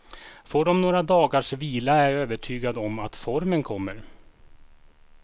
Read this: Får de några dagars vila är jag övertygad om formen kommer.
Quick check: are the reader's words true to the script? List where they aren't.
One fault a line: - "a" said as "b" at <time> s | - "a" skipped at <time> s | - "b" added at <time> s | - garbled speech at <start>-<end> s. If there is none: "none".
- "att" added at 3.0 s